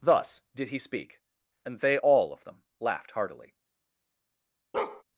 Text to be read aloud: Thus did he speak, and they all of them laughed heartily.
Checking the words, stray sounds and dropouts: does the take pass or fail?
fail